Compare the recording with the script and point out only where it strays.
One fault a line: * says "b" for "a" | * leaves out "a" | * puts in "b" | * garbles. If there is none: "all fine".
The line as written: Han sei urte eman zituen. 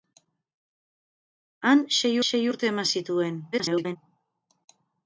* puts in "sei"
* garbles